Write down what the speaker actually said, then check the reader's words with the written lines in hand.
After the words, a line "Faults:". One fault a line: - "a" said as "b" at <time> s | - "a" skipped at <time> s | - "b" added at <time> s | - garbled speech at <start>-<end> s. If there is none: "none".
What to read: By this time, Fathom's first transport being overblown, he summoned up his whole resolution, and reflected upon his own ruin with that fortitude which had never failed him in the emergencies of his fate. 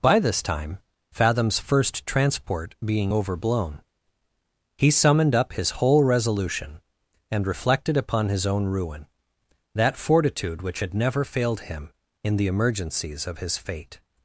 By this time, Fathom's first transport being overblown, he summoned up his whole resolution, and reflected upon his own ruin that fortitude which had never failed him in the emergencies of his fate.
Faults:
- "with" skipped at 9.1 s